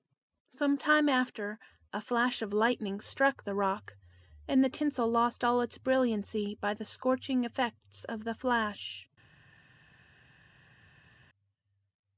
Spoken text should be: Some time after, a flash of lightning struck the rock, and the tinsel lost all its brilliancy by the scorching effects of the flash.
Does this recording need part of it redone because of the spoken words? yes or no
no